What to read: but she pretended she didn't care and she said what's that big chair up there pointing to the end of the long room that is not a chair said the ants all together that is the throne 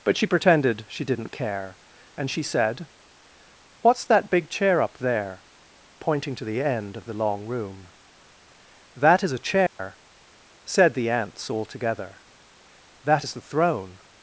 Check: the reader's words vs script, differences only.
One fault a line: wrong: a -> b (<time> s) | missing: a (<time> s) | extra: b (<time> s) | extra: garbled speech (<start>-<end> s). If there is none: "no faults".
missing: not (9.3 s)